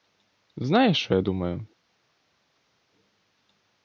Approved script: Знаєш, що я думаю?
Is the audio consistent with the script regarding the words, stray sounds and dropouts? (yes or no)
yes